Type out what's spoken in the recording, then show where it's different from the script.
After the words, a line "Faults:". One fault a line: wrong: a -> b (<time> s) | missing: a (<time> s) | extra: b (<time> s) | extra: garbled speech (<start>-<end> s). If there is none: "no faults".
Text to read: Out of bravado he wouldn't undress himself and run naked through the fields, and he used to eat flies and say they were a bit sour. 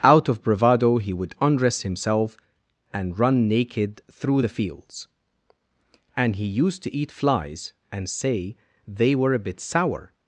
Out of bravado he would undress himself and run naked through the fields, and he used to eat flies and say they were a bit sour.
Faults:
wrong: wouldn't -> would (1.1 s)